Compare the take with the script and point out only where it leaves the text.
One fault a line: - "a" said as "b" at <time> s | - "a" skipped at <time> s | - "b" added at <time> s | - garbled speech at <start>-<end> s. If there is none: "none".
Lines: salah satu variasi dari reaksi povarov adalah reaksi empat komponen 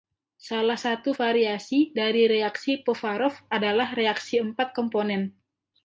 none